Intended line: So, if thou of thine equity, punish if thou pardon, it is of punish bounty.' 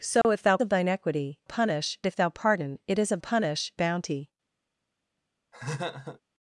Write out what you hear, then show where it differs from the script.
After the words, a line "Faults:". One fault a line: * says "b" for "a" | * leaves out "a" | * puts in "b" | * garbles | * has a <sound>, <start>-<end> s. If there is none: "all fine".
So, if thou of thine equity, punish if thou pardon, it is of punish bounty.'
Faults:
* has a dropout, 0.2-0.2 s
* has a laugh, 5.5-6.2 s